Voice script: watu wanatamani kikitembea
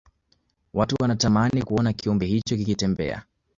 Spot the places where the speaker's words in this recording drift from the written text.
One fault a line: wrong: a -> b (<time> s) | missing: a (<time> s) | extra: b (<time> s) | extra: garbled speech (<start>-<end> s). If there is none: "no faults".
extra: kuona kiumbe hicho (1.6 s)